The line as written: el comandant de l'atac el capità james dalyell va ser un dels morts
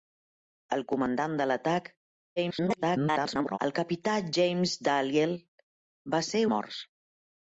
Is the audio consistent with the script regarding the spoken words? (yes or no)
no